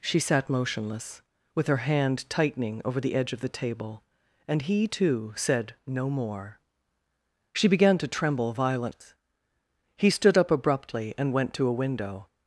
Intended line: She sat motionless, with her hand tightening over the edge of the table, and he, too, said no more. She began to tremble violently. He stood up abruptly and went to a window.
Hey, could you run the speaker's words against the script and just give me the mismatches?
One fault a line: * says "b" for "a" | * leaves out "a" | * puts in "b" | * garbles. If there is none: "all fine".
all fine